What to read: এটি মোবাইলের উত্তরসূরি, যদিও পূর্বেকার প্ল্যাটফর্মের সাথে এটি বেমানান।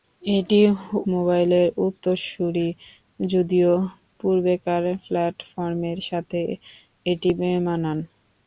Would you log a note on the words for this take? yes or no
no